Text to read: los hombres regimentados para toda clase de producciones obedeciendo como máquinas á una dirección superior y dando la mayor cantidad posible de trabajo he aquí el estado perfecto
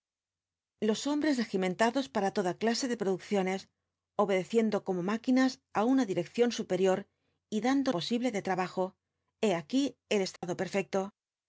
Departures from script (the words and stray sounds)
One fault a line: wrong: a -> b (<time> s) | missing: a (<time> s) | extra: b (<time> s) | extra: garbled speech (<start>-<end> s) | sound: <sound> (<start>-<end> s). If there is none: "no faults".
missing: la mayor cantidad (7.9 s)
sound: dropout (10.4-10.4 s)